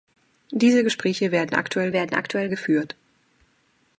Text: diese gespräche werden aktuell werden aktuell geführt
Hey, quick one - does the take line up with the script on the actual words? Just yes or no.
yes